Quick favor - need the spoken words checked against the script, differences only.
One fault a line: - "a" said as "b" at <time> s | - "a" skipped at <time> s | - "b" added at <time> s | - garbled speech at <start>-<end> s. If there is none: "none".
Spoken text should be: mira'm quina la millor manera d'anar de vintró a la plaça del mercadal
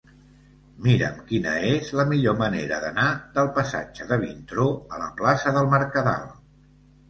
- "és" added at 1.7 s
- "del passatge" added at 3.4 s